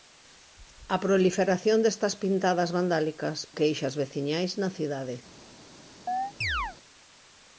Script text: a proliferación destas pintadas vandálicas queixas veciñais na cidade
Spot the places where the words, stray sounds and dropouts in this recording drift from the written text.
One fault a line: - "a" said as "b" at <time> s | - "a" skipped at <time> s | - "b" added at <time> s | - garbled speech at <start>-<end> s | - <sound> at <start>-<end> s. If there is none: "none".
- chirp at 6.1-6.8 s